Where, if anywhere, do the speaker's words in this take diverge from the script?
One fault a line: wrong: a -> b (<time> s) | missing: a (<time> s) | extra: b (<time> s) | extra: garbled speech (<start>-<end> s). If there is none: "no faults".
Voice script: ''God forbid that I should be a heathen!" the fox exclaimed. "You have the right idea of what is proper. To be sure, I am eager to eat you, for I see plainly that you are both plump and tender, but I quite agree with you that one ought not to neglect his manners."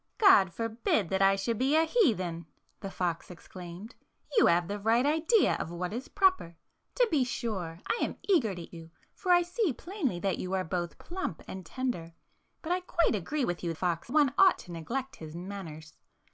missing: eat (8.8 s)
wrong: that -> fox (13.7 s)
missing: not (14.6 s)